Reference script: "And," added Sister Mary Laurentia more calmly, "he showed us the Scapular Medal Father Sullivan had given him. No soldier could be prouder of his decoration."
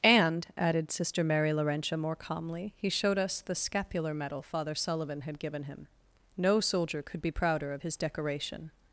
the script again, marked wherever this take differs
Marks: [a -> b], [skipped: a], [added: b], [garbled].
"And," added Sister Mary Laurentia more calmly, "he showed us the Scapular Medal Father Sullivan had given him. No soldier could be prouder of his decoration."